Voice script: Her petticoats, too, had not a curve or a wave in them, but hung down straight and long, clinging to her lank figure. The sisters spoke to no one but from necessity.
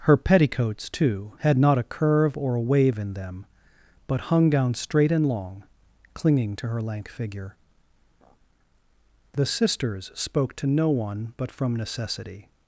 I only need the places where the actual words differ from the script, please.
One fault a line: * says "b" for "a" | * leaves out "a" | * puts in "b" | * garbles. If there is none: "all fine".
all fine